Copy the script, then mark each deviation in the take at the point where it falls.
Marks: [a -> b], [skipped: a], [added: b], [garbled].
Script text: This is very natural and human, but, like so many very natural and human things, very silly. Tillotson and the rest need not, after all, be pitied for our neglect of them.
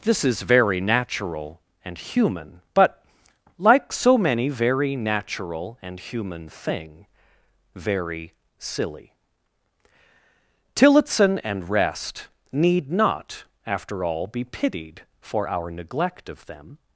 This is very natural and human, but, like so many very natural and human [things, -> thing] very silly. Tillotson and [skipped: the] rest need not, after all, be pitied for our neglect of them.